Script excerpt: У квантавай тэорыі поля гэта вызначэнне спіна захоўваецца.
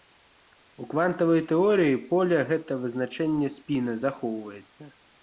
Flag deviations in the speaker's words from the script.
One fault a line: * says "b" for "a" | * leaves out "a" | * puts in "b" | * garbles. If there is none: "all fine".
all fine